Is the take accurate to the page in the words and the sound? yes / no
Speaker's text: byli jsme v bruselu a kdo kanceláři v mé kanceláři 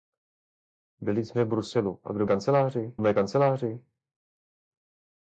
yes